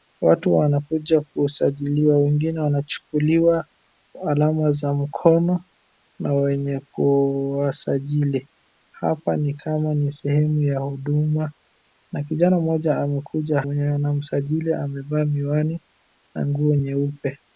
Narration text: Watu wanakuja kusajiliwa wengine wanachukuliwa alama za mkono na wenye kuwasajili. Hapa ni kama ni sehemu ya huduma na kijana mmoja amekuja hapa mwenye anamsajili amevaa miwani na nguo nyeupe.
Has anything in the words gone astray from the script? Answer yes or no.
yes